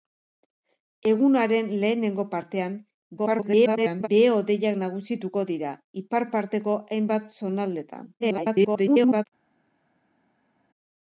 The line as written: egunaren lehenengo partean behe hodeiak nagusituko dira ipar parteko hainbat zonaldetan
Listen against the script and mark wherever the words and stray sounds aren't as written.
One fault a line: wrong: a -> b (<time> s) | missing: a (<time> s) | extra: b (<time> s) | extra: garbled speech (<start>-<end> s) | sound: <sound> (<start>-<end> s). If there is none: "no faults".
extra: garbled speech (3.2-4.1 s)
extra: garbled speech (8.2-9.2 s)